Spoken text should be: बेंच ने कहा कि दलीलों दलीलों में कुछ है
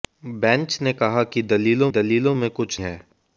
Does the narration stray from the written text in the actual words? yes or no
no